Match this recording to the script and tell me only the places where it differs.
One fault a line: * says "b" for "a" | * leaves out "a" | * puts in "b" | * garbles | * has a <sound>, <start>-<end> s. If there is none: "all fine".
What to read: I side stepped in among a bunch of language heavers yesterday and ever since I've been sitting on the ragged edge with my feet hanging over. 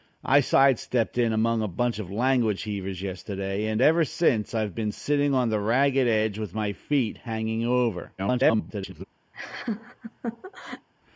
* garbles
* has a laugh, 9.3-10.9 s